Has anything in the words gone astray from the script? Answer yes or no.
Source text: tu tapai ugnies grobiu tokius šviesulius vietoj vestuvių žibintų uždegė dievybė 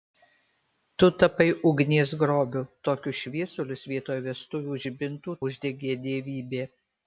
no